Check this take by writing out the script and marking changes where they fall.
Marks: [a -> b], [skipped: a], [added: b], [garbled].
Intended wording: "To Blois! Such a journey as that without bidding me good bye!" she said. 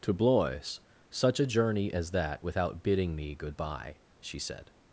"To Blois! Such a journey as that without bidding me good bye!" she said.